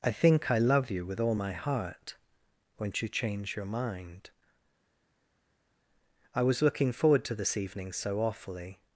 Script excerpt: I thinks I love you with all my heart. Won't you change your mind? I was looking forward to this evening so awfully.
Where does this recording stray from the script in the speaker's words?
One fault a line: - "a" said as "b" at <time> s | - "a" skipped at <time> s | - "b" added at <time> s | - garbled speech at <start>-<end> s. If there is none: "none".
- "thinks" said as "think" at 0.1 s